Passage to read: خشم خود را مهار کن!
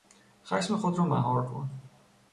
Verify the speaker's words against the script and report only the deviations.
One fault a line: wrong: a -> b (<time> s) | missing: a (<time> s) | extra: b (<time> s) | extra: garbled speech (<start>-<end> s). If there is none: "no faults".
no faults